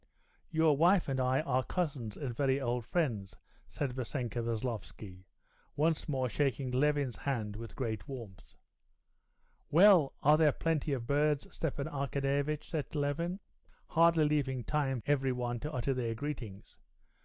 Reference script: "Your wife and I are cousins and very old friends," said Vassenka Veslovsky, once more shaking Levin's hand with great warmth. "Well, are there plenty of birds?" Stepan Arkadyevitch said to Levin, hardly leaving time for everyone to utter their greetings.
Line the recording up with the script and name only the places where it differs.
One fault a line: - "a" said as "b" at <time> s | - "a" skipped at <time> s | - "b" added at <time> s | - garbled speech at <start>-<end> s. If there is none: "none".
- "for" skipped at 15.0 s